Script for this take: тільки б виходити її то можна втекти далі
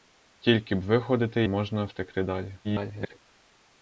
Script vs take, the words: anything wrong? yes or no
yes